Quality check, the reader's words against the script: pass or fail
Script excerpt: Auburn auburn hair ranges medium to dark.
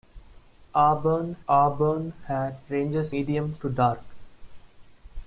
pass